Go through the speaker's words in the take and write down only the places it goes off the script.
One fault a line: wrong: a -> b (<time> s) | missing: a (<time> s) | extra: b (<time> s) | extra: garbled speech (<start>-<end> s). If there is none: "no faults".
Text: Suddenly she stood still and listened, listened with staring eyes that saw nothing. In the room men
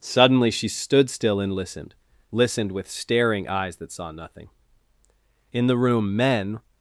no faults